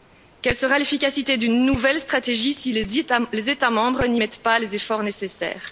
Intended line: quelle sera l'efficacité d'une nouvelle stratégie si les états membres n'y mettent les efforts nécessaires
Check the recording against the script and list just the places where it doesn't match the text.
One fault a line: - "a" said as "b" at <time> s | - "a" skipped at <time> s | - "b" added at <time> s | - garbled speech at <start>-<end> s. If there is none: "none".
- "pas" added at 4.4 s